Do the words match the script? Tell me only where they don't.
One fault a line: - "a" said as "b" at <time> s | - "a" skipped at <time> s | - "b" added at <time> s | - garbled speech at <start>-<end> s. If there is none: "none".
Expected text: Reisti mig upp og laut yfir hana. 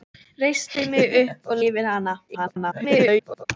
- "laut" skipped at 1.6 s
- garbled speech at 2.3-3.5 s